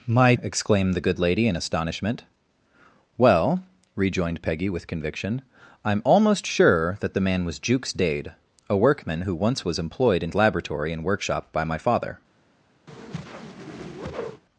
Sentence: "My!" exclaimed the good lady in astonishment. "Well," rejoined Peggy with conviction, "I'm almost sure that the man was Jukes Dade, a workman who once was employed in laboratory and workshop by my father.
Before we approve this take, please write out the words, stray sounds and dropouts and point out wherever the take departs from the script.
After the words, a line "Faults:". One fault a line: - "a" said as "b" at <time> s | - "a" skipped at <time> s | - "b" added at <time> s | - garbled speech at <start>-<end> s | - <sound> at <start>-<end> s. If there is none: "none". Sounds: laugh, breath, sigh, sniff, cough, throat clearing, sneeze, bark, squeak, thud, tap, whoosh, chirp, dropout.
"My!" exclaimed the good lady in astonishment. "Well," rejoined Peggy with conviction, "I'm almost sure that the man was Jukes Dade, a workman who once was employed in laboratory and workshop by my father.
Faults:
- whoosh at 12.9-14.4 s